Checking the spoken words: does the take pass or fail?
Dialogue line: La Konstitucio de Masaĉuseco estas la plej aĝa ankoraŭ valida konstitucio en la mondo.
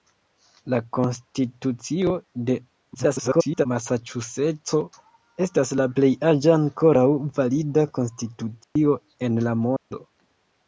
fail